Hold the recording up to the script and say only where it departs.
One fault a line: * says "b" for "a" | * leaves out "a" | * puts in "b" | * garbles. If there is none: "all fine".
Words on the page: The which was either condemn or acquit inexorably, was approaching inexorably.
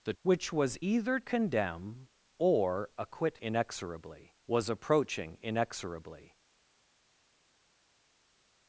all fine